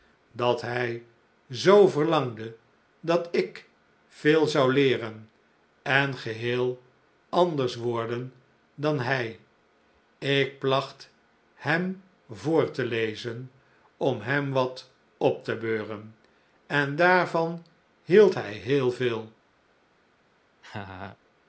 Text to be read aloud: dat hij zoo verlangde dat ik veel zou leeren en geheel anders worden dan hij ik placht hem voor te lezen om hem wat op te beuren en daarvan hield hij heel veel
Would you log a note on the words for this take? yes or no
no